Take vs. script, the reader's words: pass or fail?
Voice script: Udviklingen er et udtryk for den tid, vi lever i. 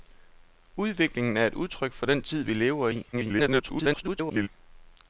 fail